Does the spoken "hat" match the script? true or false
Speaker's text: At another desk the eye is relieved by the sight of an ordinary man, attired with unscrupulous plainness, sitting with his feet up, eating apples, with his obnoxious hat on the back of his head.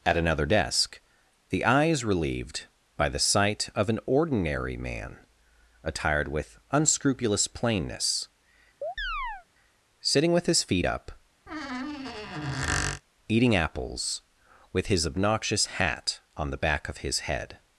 true